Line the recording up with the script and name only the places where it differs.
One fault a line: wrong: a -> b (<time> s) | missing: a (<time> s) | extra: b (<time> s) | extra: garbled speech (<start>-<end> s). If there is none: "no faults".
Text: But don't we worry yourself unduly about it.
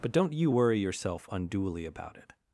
wrong: we -> you (0.3 s)